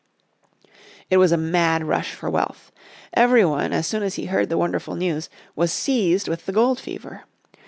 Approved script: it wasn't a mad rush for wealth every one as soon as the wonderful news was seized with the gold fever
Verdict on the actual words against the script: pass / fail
fail